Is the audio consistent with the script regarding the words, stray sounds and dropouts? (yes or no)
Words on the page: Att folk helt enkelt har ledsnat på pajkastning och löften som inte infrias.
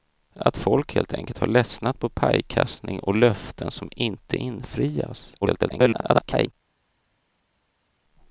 no